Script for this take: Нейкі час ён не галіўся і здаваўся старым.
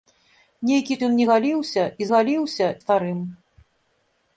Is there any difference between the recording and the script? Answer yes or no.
yes